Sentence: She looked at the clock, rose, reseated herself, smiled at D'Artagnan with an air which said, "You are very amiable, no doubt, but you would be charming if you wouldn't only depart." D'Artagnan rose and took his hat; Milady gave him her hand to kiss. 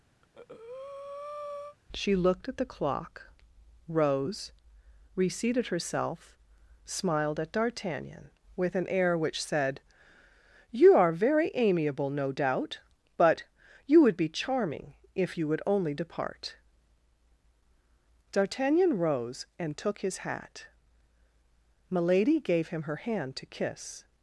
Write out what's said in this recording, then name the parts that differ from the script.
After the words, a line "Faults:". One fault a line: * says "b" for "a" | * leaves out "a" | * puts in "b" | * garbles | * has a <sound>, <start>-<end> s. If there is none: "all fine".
She looked at the clock, rose, reseated herself, smiled at D'Artagnan with an air which said, "You are very amiable, no doubt, but you would be charming if you would only depart." D'Artagnan rose and took his hat; Milady gave him her hand to kiss.
Faults:
* has a breath, 0.2-1.8 s
* says "would" for "wouldn't"